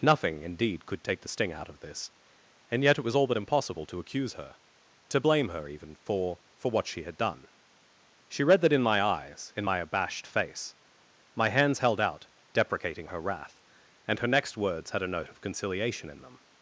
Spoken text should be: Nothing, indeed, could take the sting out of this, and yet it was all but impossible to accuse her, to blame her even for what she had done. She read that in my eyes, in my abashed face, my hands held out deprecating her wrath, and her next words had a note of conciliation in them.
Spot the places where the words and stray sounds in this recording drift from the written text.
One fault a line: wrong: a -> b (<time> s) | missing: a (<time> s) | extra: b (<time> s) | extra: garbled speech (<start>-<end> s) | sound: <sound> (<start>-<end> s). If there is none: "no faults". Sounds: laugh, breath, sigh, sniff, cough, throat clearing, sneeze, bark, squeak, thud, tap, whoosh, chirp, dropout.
extra: for (6.6 s)